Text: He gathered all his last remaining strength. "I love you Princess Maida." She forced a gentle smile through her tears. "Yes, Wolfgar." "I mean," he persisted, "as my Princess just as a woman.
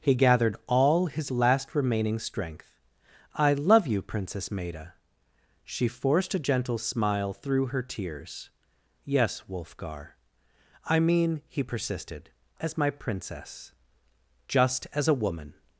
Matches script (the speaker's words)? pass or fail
pass